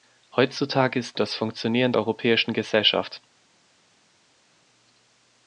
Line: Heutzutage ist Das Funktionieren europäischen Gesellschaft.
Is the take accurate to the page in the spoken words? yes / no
yes